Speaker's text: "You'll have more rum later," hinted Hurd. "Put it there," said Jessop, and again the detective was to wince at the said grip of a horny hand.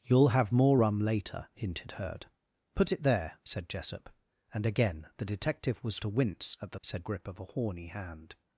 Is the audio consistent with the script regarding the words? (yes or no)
yes